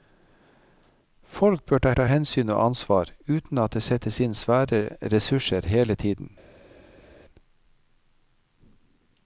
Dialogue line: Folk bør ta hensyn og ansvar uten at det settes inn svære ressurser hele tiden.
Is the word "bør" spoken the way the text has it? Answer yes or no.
yes